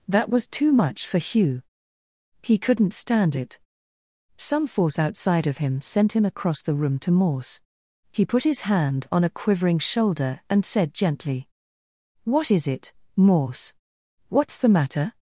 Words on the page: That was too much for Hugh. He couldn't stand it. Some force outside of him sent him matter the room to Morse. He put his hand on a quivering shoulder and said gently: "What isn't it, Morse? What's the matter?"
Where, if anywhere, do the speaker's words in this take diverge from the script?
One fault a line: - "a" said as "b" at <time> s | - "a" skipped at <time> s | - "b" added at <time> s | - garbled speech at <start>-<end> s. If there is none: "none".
- "matter" said as "across" at 6.2 s
- "isn't" said as "is" at 12.5 s